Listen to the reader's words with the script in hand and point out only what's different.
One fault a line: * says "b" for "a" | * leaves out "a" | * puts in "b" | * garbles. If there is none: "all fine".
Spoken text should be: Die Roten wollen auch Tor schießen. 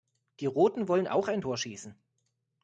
* puts in "ein"